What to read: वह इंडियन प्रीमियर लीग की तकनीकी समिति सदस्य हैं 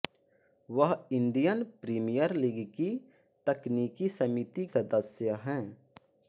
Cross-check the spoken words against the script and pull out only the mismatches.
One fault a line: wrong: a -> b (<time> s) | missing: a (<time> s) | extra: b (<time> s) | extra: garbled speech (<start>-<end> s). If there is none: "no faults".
no faults